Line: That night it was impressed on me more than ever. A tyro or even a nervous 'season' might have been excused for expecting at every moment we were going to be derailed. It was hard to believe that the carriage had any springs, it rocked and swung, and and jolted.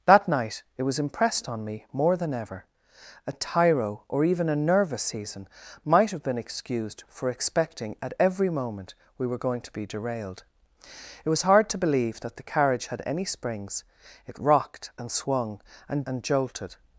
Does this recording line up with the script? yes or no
yes